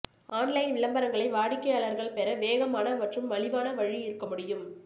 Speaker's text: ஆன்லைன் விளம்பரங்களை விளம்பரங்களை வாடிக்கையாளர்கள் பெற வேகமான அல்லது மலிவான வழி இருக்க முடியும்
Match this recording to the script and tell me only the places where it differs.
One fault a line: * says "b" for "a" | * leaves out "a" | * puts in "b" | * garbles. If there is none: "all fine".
* leaves out "விளம்பரங்களை"
* says "மற்றும்" for "அல்லது"